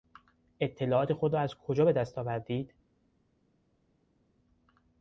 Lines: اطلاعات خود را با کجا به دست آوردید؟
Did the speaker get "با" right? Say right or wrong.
wrong